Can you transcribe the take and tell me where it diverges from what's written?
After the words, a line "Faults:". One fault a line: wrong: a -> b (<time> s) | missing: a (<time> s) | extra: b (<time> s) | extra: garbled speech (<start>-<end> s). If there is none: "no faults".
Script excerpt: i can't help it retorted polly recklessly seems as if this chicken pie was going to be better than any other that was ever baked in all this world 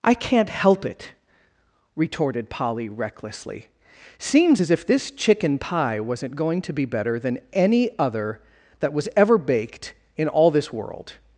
i can't help it retorted polly recklessly seems as if this chicken pie wasn't going to be better than any other that was ever baked in all this world
Faults:
wrong: was -> wasn't (6.0 s)